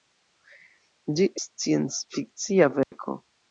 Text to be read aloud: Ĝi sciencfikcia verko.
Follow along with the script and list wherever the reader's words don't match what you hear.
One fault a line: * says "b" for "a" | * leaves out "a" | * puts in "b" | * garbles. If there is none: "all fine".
all fine